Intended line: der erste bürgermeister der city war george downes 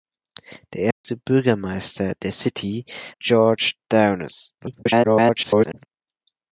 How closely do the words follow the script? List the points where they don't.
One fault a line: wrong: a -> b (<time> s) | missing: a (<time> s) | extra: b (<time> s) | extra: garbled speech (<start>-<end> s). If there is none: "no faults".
missing: war (2.8 s)
extra: garbled speech (4.6-5.9 s)